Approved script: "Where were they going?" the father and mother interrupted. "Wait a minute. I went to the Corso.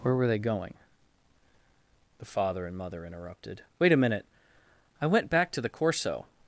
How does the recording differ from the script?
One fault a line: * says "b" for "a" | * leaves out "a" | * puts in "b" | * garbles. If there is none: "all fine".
* puts in "back"